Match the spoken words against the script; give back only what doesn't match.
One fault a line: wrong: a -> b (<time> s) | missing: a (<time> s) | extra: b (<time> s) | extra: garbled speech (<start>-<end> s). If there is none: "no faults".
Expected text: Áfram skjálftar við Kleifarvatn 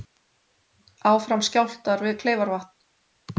no faults